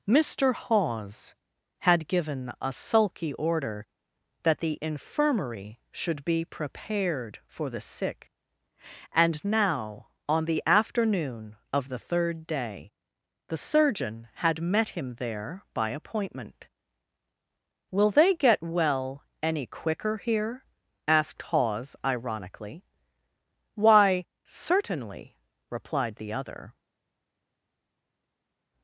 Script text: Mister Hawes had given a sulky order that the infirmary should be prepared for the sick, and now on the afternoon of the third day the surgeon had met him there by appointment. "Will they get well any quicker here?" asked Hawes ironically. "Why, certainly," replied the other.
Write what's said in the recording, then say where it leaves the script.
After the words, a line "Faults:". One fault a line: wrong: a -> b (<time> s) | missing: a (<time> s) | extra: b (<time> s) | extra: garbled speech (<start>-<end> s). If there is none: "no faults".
Mister Hawes had given a sulky order that the infirmary should be prepared for the sick, and now on the afternoon of the third day the surgeon had met him there by appointment. "Will they get well any quicker here?" asked Hawes ironically. "Why, certainly," replied the other.
Faults:
no faults